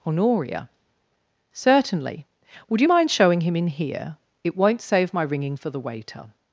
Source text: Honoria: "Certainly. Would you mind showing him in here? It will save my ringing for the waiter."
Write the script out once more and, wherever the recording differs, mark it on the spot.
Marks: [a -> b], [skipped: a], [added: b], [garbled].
Honoria: "Certainly. Would you mind showing him in here? It [will -> won't] save my ringing for the waiter."